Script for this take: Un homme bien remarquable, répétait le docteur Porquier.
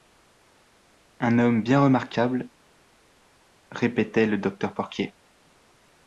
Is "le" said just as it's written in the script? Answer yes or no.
yes